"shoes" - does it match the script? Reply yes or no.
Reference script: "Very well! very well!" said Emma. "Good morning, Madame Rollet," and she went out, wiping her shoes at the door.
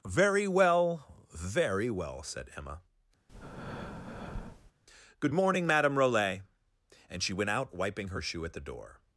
no